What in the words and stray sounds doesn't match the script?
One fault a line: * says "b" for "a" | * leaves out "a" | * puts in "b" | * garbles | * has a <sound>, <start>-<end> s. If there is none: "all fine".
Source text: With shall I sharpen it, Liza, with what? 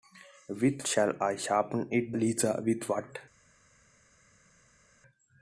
all fine